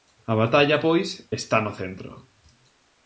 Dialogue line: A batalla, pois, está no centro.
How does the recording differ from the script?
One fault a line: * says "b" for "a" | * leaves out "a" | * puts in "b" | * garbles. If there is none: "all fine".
all fine